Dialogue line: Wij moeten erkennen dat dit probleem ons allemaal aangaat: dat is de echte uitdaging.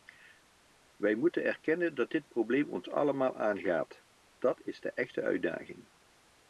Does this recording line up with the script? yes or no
yes